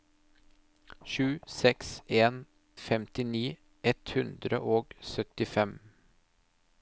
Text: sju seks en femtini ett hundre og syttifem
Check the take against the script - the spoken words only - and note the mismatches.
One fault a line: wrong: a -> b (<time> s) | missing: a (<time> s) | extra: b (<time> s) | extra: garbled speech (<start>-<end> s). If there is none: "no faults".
no faults